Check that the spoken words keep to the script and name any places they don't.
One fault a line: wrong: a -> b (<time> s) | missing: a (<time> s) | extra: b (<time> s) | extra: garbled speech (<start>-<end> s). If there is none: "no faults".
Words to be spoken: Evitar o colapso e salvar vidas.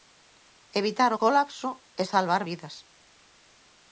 no faults